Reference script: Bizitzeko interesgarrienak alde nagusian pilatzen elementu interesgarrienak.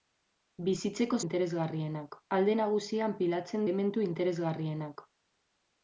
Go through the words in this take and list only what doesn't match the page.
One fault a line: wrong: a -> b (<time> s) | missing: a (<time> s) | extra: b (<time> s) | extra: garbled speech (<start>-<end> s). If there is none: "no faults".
no faults